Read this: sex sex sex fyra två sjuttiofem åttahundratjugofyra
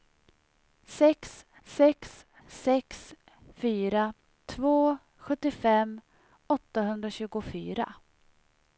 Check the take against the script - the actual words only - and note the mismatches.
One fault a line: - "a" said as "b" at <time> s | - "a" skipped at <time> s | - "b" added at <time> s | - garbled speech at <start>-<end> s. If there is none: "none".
none